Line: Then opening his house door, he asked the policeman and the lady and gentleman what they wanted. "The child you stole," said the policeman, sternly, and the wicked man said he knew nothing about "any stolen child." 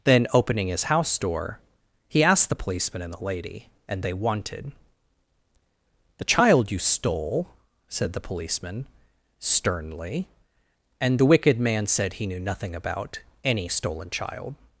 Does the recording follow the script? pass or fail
fail